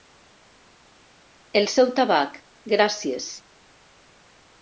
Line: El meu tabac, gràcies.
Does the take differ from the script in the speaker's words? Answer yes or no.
yes